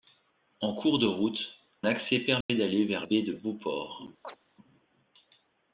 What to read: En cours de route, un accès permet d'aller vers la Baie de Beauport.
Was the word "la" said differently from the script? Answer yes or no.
yes